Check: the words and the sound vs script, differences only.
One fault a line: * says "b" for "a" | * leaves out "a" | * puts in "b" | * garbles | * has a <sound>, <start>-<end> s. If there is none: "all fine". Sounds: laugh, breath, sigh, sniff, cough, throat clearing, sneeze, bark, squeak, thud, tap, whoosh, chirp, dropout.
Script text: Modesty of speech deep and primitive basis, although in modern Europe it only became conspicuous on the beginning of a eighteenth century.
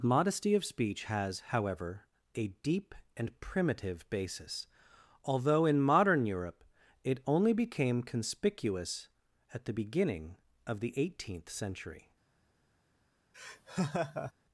* puts in "has however a"
* says "at" for "on"
* says "the" for "a"
* has a laugh, 13.3-14.3 s